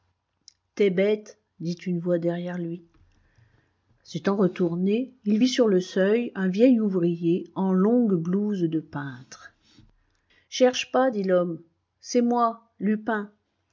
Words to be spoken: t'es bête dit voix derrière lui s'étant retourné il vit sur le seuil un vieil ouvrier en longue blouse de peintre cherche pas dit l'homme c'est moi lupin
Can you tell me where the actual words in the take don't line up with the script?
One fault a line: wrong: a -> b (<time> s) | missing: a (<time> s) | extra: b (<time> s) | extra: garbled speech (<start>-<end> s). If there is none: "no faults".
extra: une (1.9 s)